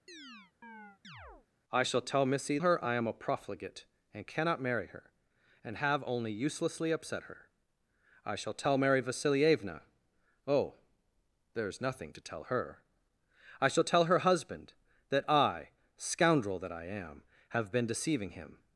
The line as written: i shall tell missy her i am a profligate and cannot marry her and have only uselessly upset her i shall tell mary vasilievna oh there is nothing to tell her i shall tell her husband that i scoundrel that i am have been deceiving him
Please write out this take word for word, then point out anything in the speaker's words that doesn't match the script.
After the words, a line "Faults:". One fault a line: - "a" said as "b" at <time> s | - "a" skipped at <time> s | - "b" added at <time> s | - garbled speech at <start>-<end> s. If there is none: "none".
i shall tell missy her i am a profligate and cannot marry her and have only uselessly upset her i shall tell mary vasilievna oh there is nothing to tell her i shall tell her husband that i scoundrel that i am have been deceiving him
Faults:
none